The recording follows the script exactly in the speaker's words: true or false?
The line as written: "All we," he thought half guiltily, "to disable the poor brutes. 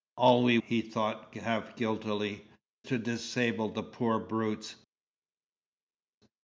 true